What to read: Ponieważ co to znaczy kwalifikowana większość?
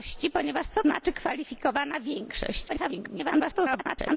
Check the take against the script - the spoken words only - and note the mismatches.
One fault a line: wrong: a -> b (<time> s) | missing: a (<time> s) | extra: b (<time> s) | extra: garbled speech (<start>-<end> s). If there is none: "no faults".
missing: to (0.8 s)
extra: garbled speech (2.7-4.2 s)